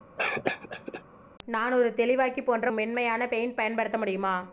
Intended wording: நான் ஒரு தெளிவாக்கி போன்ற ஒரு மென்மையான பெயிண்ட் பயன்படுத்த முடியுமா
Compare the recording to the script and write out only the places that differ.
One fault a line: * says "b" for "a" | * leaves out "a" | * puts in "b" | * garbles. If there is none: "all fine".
* leaves out "ஒரு"